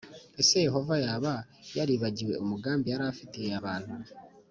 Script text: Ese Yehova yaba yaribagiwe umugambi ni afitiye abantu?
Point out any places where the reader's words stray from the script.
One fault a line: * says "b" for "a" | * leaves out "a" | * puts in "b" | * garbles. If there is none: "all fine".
* says "yari" for "ni"